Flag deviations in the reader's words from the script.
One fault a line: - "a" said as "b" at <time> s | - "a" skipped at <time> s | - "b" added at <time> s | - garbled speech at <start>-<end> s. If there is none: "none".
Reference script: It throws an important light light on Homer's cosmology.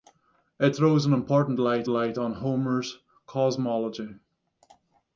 none